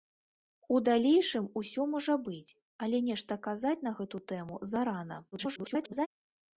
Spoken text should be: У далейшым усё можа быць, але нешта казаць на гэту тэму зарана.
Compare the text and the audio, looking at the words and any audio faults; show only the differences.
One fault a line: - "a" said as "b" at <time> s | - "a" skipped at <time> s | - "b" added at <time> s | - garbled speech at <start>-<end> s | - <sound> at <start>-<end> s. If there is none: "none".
- garbled speech at 5.3-6.1 s